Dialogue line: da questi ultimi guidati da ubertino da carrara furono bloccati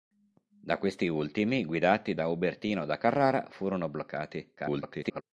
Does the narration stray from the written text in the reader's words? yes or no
yes